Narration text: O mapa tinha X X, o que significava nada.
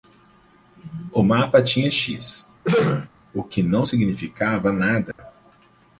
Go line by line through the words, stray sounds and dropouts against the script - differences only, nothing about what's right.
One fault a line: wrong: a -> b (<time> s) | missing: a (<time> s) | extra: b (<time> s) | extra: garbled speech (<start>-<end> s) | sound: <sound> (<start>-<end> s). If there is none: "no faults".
missing: X (2.5 s)
sound: throat clearing (2.6-3.1 s)
extra: não (3.6 s)
sound: dropout (5.1-5.2 s)